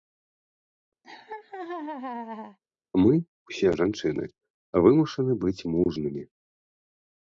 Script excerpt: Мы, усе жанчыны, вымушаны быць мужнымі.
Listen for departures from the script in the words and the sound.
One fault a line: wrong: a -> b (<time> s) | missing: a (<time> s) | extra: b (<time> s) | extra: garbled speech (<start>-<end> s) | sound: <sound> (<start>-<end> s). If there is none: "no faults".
sound: laugh (1.0-2.6 s)